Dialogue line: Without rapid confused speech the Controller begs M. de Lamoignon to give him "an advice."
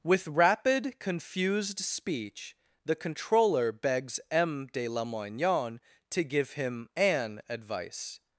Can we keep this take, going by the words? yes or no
no